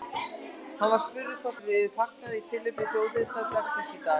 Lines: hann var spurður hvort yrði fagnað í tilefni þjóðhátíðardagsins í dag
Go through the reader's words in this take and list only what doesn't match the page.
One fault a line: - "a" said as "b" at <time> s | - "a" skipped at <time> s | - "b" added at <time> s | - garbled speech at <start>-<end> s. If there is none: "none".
none